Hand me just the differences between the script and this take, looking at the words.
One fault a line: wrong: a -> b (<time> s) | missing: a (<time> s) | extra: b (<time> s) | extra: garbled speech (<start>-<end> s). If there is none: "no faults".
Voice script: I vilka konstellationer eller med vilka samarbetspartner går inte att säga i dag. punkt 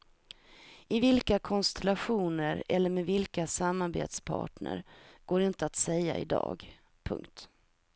no faults